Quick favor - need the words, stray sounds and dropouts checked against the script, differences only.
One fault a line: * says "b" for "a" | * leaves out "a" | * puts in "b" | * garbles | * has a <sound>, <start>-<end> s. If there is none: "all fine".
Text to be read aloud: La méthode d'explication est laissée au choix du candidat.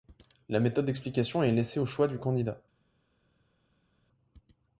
all fine